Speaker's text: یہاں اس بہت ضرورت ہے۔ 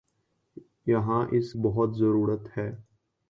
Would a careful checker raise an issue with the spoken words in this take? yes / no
no